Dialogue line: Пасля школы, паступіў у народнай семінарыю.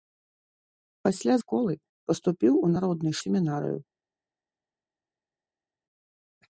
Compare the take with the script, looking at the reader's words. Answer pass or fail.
pass